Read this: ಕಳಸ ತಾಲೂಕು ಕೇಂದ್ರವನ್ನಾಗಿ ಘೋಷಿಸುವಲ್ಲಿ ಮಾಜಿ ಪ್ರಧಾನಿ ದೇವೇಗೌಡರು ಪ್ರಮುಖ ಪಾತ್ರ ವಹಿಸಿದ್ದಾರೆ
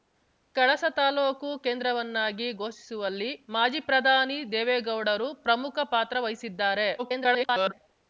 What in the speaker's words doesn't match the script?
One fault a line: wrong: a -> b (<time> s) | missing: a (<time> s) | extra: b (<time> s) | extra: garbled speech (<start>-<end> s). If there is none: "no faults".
extra: garbled speech (7.0-7.7 s)